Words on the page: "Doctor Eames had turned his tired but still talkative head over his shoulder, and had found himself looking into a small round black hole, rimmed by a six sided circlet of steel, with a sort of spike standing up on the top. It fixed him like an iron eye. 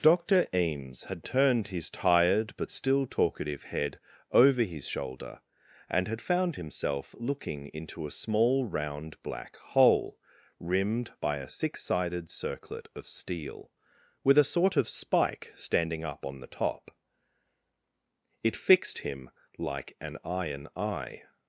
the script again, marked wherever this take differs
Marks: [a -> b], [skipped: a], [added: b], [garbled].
"Doctor Eames had turned his tired but still talkative head over his shoulder, and had found himself looking into a small round black hole, rimmed by a six sided circlet of steel, with a sort of spike standing up on the top. It fixed him like an iron eye.